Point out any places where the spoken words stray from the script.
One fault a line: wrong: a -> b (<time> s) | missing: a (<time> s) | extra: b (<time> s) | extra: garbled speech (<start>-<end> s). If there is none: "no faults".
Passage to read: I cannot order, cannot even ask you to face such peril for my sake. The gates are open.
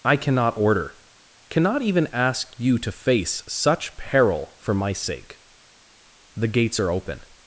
no faults